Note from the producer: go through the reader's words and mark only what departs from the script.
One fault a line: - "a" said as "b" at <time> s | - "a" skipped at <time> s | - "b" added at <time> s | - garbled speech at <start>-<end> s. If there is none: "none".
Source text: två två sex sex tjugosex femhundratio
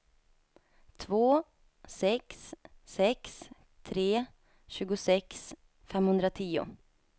- "två" said as "sex" at 1.9 s
- "sex" said as "tre" at 3.8 s